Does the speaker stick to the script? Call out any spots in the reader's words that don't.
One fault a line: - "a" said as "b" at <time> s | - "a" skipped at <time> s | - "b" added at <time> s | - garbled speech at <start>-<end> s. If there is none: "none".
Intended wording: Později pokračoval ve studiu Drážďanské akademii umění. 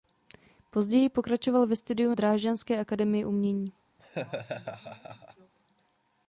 none